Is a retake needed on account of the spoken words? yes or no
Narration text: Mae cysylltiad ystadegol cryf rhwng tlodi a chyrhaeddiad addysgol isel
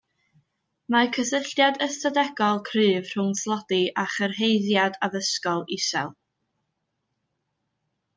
no